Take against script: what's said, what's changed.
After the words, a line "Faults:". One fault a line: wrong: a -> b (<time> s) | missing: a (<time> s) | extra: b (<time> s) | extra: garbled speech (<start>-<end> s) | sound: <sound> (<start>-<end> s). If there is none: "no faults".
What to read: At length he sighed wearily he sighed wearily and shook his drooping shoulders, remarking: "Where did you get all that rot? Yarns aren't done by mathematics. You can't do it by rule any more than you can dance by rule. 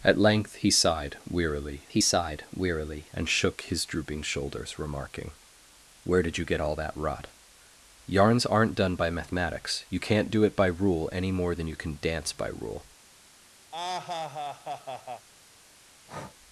At length he sighed wearily he sighed wearily and shook his drooping shoulders, remarking: "Where did you get all that rot? Yarns aren't done by mathematics. You can't do it by rule any more than you can dance by rule.
Faults:
sound: laugh (13.7-15.3 s)
sound: breath (16.1-16.4 s)